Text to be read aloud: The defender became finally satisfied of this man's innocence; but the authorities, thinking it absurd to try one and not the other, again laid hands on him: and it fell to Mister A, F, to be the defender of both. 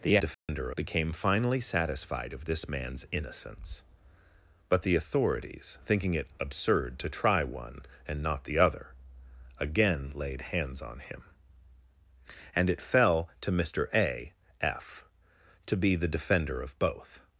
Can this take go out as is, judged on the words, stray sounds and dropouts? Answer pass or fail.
fail